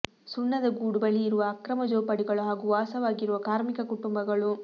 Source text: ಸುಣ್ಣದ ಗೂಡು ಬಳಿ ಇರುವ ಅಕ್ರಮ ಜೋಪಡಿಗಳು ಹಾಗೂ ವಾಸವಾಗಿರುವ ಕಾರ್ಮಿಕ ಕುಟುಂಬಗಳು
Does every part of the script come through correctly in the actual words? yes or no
yes